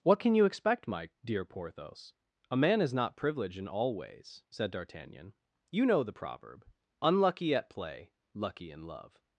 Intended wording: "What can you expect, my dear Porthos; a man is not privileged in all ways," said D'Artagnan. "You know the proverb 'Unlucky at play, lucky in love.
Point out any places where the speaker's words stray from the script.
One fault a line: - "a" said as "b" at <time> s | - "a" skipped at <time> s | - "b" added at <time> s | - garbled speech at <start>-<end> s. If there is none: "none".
none